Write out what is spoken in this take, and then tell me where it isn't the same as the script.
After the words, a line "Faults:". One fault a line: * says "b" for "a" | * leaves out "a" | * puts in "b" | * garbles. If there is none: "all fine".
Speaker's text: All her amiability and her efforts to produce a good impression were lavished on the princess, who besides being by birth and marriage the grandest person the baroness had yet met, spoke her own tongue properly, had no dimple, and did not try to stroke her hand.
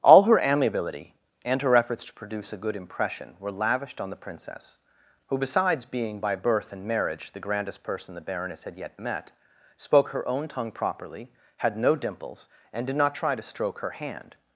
All her amiability and her efforts to produce a good impression were lavished on the princess, who besides being by birth and marriage the grandest person the baroness had yet met, spoke her own tongue properly, had no dimples, and did not try to stroke her hand.
Faults:
* says "dimples" for "dimple"